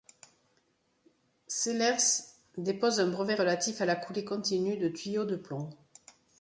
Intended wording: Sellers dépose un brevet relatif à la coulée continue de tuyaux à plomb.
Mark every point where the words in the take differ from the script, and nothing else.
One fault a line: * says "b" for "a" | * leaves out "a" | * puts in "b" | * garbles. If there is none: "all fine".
* says "de" for "à"